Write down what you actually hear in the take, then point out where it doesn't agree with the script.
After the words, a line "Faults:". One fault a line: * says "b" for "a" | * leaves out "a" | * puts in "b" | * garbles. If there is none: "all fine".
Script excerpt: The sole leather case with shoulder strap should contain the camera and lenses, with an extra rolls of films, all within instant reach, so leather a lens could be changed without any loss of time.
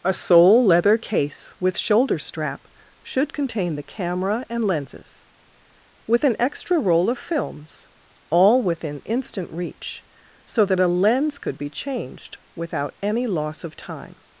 A sole leather case with shoulder strap should contain the camera and lenses, with an extra roll of films, all within instant reach, so that a lens could be changed without any loss of time.
Faults:
* says "A" for "The"
* says "roll" for "rolls"
* says "that" for "leather"